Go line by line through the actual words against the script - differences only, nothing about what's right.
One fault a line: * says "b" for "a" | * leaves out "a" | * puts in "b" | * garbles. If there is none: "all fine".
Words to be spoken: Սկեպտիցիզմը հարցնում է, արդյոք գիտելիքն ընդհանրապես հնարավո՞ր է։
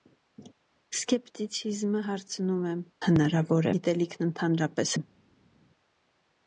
* says "հնարավո՞ր" for "արդյոք"
* leaves out "հնարավո՞ր"